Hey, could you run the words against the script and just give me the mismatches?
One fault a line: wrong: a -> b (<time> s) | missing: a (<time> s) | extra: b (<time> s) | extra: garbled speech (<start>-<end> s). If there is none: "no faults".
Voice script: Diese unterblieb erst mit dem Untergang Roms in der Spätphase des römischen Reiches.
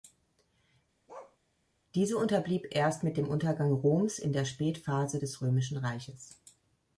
no faults